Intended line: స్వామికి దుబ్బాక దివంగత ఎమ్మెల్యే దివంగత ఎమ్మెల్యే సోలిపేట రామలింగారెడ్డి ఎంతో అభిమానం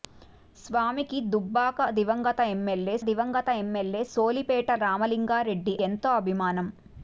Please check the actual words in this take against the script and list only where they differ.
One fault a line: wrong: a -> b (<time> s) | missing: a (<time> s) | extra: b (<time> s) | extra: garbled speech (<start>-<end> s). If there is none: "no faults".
no faults